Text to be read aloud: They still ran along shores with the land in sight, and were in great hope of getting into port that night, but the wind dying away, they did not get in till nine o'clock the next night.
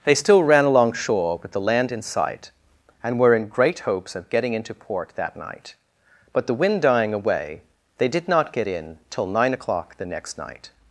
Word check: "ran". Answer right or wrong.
right